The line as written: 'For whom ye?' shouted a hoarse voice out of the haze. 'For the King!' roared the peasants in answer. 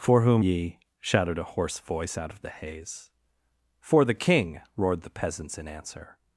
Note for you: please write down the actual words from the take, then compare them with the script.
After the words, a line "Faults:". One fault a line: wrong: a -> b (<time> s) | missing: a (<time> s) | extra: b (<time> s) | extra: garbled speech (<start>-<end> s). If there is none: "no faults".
'For whom ye?' shouted a hoarse voice out of the haze. 'For the King!' roared the peasants in answer.
Faults:
no faults